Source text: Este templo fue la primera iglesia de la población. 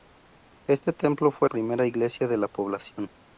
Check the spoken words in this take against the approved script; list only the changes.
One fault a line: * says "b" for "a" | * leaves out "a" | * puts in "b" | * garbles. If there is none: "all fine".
* leaves out "la"